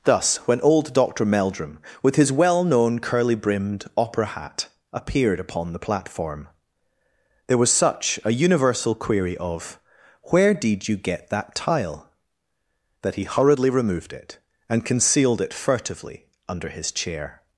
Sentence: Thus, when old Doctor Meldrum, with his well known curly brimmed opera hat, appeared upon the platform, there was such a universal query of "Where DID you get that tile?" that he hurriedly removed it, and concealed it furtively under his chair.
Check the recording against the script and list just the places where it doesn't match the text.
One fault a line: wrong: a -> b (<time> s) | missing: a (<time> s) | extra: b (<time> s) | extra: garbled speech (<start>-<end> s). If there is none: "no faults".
no faults